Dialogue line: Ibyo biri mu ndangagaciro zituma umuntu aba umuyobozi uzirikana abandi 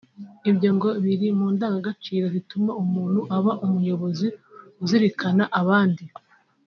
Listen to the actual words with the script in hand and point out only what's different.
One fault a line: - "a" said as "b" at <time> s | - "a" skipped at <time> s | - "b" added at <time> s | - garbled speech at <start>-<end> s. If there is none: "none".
- "ngo" added at 0.7 s